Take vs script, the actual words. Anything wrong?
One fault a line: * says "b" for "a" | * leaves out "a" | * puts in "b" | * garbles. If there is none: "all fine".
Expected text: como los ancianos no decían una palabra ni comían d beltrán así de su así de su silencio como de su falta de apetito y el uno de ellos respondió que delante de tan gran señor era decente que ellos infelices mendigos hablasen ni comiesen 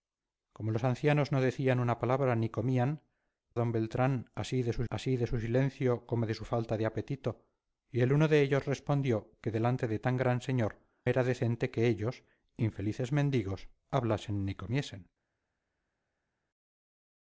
all fine